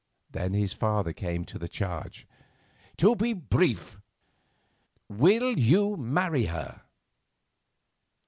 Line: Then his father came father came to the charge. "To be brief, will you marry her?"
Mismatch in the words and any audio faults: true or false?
true